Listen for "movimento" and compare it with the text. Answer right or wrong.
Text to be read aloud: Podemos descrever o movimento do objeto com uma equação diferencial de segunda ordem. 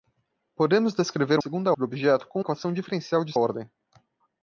wrong